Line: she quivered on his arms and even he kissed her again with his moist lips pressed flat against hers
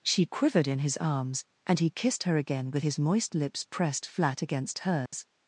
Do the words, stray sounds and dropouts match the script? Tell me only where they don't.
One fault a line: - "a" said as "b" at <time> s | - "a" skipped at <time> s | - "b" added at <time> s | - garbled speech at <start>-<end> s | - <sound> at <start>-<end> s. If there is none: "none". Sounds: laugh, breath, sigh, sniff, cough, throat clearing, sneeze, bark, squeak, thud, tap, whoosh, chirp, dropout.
- "on" said as "in" at 0.7 s
- "even" skipped at 1.8 s
- dropout at 5.1-5.1 s